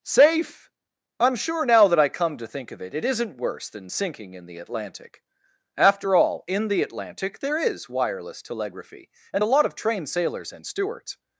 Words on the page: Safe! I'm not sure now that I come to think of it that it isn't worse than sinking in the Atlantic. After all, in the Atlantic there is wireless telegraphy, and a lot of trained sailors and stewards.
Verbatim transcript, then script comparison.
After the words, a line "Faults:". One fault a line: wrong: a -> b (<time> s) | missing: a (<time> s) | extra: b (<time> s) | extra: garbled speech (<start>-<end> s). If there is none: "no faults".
Safe! I'm sure now that I come to think of it it isn't worse than sinking in the Atlantic. After all, in the Atlantic there is wireless telegraphy, and a lot of trained sailors and stewards.
Faults:
missing: not (1.4 s)
missing: that (3.0 s)